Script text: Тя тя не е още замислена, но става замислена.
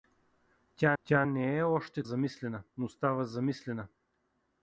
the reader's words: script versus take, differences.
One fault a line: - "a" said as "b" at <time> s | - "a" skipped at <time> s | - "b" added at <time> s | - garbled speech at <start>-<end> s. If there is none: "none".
none